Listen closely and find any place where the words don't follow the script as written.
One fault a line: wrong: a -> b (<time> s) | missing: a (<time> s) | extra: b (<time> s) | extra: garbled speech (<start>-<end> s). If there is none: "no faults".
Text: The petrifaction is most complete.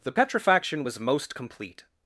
wrong: is -> was (0.8 s)